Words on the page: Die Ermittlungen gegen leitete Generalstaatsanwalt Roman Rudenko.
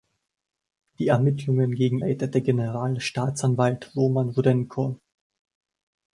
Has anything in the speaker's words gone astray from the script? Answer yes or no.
no